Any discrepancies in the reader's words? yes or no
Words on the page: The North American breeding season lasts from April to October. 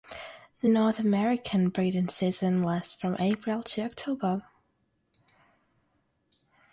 no